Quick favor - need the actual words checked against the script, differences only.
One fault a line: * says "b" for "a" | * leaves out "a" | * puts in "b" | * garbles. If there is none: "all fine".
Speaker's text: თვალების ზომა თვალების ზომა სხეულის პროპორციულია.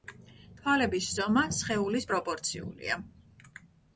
* leaves out "თვალების ზომა"